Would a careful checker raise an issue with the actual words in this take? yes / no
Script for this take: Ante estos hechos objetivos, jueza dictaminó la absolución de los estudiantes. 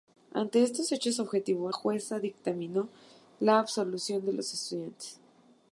no